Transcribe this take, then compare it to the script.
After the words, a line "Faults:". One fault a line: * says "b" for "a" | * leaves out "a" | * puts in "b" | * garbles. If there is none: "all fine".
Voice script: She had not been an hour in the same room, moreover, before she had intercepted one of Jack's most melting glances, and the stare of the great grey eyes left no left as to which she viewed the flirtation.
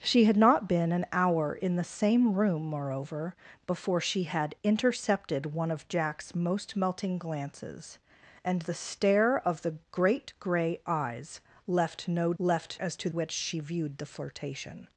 She had not been an hour in the same room, moreover, before she had intercepted one of Jack's most melting glances, and the stare of the great grey eyes left no left as to which she viewed the flirtation.
Faults:
all fine